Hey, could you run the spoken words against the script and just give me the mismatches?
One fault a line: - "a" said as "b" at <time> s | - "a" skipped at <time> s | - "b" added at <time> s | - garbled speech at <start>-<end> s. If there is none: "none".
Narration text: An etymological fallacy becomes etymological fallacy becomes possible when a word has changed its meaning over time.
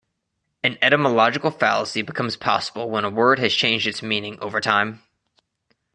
- "etymological fallacy becomes" skipped at 2.4 s